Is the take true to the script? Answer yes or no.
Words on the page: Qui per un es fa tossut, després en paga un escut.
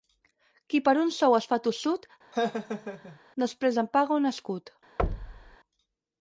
no